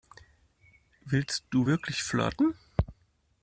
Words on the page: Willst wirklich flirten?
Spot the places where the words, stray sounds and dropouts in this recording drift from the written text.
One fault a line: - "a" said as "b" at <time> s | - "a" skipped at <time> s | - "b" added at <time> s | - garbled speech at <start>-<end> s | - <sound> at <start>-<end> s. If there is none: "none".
- "du" added at 1.5 s